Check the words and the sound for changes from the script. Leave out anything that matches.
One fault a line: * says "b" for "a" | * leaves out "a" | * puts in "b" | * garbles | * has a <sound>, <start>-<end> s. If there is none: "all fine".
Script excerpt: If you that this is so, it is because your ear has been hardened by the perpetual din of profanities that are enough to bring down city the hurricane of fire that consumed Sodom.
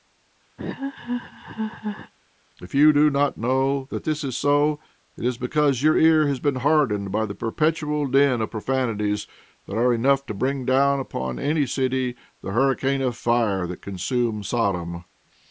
* has a laugh, 0.6-2.1 s
* puts in "do not know"
* puts in "upon any"